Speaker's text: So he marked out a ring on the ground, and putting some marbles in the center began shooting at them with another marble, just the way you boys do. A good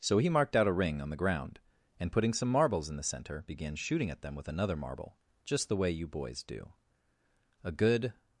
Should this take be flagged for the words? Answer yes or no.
no